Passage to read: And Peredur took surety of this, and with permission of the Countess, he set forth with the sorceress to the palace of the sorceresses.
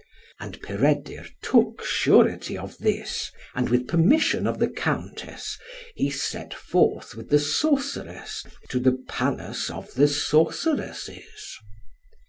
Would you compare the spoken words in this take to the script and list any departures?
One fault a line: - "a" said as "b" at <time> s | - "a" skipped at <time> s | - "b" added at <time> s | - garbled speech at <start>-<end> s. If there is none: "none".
none